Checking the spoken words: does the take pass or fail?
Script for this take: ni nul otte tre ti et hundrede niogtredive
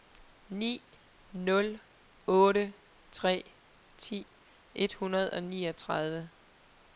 fail